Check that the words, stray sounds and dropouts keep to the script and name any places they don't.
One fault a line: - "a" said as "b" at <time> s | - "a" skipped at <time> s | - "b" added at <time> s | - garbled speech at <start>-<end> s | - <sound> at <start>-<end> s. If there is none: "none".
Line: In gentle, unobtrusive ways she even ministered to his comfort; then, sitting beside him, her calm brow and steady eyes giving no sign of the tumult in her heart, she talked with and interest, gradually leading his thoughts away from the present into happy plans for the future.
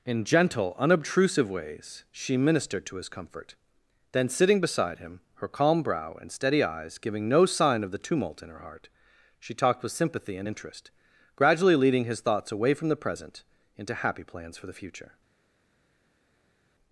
- "even" skipped at 2.4 s
- "sympathy" added at 9.9 s